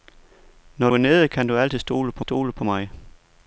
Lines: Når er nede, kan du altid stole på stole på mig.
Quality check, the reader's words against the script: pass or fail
pass